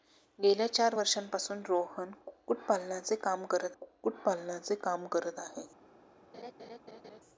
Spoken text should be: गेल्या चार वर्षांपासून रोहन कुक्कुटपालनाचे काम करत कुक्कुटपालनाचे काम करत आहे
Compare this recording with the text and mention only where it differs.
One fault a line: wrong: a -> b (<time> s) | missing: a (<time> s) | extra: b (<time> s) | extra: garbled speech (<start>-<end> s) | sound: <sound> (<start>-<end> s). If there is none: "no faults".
sound: laugh (6.3-7.2 s)